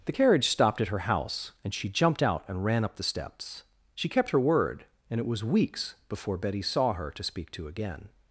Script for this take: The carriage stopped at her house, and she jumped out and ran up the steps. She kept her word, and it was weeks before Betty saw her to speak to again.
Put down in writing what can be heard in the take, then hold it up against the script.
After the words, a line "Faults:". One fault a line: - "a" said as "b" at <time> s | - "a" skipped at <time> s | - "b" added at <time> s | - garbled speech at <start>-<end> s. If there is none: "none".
The carriage stopped at her house, and she jumped out and ran up the steps. She kept her word, and it was weeks before Betty saw her to speak to again.
Faults:
none